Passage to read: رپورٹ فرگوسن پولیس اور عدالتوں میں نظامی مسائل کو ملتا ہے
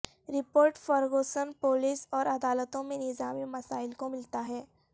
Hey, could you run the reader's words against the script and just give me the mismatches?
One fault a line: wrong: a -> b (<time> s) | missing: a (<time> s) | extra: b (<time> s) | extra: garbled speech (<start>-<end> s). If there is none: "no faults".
no faults